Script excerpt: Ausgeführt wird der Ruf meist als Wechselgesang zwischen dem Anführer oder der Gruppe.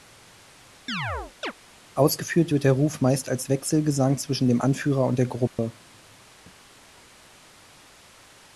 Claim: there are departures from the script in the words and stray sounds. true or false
true